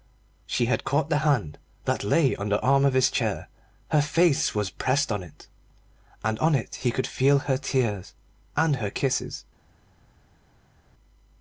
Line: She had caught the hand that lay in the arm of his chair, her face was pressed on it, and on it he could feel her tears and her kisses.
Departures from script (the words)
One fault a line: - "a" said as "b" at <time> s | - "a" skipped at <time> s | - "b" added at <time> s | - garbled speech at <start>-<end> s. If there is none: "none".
- "in" said as "on" at 2.4 s